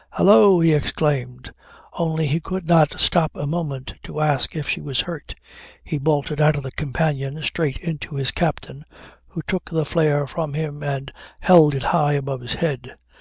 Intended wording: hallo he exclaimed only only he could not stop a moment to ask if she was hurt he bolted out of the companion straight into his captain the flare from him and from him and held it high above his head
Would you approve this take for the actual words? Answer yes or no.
no